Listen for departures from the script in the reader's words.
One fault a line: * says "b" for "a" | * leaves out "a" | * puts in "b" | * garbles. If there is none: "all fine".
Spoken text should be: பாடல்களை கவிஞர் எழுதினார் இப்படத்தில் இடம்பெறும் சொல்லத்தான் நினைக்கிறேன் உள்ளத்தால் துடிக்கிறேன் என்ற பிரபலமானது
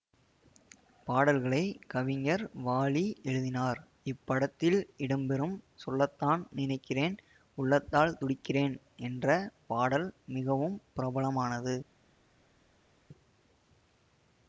* puts in "வாலி"
* puts in "பாடல் மிகவும்"